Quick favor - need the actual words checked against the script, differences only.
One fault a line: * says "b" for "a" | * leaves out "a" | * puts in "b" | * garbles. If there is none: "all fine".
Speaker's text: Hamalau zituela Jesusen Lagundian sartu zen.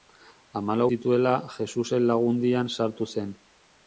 all fine